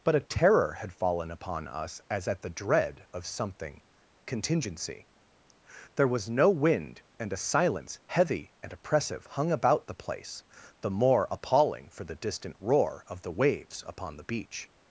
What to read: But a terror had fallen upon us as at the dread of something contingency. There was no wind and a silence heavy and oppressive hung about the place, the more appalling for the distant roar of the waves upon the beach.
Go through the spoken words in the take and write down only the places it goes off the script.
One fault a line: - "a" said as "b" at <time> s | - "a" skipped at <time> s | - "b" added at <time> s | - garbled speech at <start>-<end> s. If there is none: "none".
none